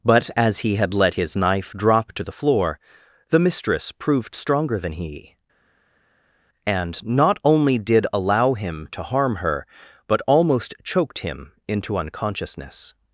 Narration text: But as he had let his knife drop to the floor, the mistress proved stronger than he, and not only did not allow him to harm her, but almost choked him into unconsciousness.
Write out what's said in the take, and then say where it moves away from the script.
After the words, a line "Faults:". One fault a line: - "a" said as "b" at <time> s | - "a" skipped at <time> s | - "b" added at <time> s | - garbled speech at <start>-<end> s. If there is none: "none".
But as he had let his knife drop to the floor, the mistress proved stronger than he, and not only did allow him to harm her, but almost choked him into unconsciousness.
Faults:
- "not" skipped at 8.1 s